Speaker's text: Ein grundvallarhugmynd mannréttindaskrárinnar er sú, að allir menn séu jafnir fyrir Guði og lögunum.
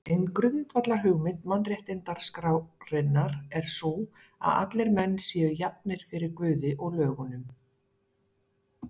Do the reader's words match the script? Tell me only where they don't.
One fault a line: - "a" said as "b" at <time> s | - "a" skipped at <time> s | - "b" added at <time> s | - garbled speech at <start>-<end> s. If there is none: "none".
none